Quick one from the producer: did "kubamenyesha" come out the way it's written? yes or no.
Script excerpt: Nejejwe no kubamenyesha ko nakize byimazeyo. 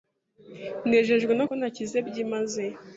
no